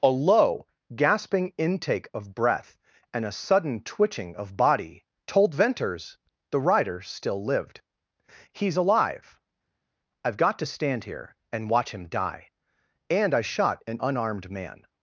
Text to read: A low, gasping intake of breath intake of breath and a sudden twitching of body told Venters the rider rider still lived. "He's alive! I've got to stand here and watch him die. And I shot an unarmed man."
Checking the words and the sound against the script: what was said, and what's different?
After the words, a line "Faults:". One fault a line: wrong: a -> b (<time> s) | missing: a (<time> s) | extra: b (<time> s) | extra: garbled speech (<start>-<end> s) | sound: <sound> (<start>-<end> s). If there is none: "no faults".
A low, gasping intake of breath and a sudden twitching of body told Venters the rider still lived. "He's alive! I've got to stand here and watch him die. And I shot an unarmed man."
Faults:
missing: intake of breath (2.8 s)
missing: rider (7.0 s)